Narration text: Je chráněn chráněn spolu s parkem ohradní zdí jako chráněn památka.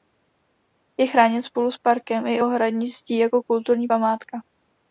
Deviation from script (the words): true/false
true